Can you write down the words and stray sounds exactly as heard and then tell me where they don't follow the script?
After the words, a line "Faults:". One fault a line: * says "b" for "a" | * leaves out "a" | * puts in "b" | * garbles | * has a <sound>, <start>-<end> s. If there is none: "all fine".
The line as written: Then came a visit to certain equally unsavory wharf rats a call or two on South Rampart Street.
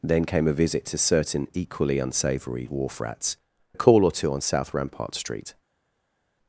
Then came a visit to certain equally unsavory wharf rats a call or two on South Rampart Street.
Faults:
all fine